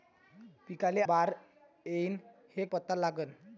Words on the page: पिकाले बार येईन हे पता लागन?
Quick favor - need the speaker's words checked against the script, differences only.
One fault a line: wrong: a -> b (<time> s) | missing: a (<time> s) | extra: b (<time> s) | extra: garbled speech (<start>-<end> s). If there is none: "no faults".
no faults